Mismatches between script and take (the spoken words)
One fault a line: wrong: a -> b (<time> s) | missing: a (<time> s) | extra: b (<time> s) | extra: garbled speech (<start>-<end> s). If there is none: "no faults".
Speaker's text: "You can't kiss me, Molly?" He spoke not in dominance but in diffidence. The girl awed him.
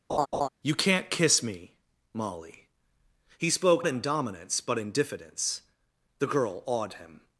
missing: not (3.8 s)